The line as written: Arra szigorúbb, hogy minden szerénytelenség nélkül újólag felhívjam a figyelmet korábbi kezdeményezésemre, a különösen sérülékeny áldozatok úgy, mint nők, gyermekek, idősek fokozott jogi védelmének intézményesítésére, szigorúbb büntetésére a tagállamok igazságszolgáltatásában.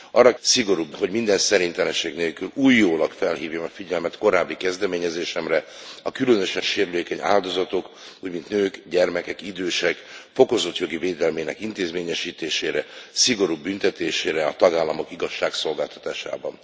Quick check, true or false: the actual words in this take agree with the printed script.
true